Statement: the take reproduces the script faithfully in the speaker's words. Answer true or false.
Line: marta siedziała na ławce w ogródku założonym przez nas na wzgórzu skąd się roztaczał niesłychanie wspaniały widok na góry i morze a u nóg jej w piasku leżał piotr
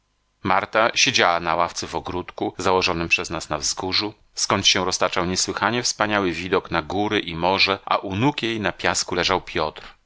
false